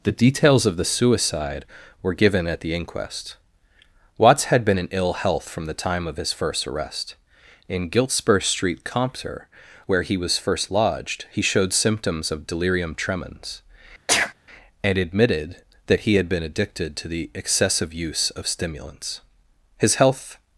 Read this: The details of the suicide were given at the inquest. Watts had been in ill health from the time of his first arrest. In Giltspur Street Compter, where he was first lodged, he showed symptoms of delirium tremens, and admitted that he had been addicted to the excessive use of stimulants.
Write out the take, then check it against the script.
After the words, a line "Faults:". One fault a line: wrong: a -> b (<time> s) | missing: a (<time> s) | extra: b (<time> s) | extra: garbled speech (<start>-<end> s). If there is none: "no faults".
The details of the suicide were given at the inquest. Watts had been in ill health from the time of his first arrest. In Giltspur Street Compter, where he was first lodged, he showed symptoms of delirium tremens, and admitted that he had been addicted to the excessive use of stimulants. His health
Faults:
extra: His health (19.8 s)